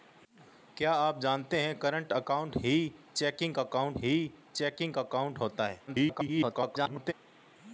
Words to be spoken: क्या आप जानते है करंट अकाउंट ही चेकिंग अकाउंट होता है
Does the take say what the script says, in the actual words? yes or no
no